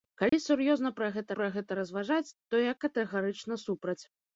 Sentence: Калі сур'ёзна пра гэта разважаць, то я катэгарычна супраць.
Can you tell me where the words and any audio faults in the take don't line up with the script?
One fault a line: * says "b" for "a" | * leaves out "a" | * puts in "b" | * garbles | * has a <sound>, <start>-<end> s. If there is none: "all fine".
* has a dropout, 0.3-0.3 s
* puts in "пра гэта"